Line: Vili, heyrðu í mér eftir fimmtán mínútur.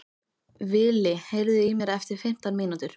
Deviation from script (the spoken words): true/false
false